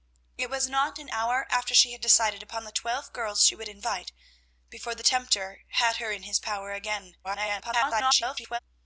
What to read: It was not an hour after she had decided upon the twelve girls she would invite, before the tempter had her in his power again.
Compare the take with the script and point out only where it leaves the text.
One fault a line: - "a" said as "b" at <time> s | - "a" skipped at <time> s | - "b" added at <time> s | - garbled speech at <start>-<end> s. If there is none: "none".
- garbled speech at 7.2-8.6 s